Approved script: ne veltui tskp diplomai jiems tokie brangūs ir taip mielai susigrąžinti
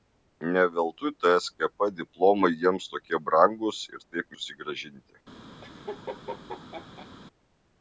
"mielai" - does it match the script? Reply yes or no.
no